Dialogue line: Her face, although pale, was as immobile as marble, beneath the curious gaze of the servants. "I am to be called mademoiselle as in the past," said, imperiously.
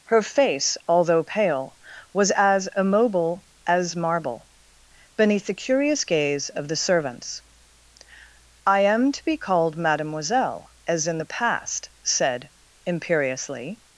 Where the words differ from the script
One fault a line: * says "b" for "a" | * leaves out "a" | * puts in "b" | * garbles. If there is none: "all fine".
all fine